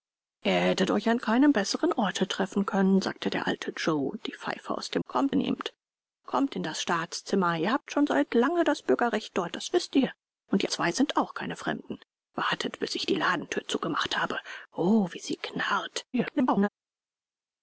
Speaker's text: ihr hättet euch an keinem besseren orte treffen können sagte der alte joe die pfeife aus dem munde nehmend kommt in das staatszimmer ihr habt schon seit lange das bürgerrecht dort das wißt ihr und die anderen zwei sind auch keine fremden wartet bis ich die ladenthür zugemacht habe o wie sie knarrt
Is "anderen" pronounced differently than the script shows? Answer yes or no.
yes